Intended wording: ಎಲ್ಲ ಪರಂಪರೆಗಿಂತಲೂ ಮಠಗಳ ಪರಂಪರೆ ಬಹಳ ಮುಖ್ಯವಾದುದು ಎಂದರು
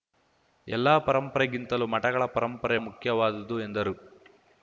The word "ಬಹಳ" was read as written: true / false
false